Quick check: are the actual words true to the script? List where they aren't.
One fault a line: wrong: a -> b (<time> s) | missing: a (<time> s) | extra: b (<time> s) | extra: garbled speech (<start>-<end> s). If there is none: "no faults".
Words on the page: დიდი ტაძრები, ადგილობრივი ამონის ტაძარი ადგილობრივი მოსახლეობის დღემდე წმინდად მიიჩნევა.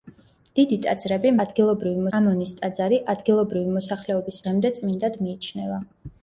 no faults